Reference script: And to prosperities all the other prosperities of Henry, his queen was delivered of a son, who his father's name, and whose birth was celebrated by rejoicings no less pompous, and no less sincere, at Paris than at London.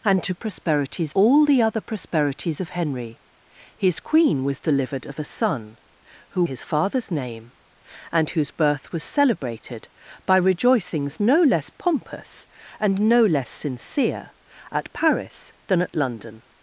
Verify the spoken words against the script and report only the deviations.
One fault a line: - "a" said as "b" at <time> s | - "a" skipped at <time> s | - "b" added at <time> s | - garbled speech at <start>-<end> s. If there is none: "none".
none